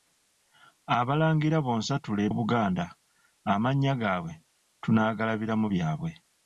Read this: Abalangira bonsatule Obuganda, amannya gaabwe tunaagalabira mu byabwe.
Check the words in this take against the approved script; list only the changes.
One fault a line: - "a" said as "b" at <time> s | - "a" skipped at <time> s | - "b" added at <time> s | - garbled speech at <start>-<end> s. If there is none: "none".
none